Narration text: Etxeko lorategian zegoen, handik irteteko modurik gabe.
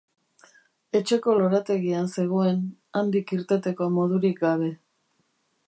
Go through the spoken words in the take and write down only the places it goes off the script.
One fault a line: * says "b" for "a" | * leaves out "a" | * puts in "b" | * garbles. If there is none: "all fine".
all fine